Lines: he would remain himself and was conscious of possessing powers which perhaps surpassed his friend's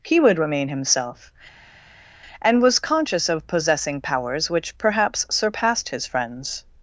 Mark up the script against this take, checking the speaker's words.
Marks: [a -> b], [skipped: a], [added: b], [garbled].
he would remain himself and was conscious of possessing powers which perhaps surpassed his friend's